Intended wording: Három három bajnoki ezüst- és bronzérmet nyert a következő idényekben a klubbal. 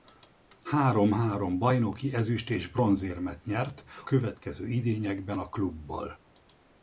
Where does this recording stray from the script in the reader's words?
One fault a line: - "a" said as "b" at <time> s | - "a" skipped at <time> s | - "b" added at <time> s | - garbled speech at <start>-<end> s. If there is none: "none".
- "a" skipped at 3.8 s